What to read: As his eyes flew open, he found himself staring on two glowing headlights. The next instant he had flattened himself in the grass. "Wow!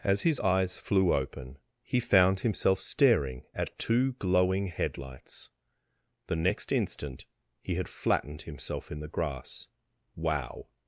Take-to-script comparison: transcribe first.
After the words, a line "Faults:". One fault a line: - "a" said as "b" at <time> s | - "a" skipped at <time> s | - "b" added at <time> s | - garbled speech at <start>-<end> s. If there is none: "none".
As his eyes flew open, he found himself staring at two glowing headlights. The next instant he had flattened himself in the grass. "Wow!
Faults:
- "on" said as "at" at 3.5 s